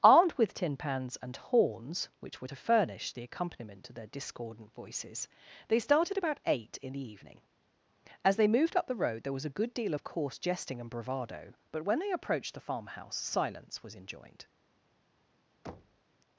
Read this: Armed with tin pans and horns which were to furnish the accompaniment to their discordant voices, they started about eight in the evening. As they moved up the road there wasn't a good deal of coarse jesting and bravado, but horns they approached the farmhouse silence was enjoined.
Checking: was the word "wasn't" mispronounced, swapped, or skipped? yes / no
yes